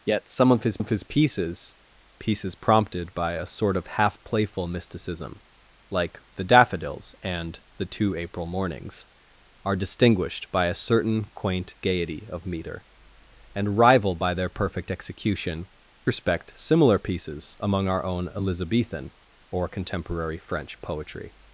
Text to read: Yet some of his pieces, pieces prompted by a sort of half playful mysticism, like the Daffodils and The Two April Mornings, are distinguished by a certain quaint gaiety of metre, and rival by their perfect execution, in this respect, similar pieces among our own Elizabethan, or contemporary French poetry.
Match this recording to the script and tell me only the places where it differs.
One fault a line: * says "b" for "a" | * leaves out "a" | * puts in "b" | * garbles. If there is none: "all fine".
* puts in "of his"
* leaves out "in this"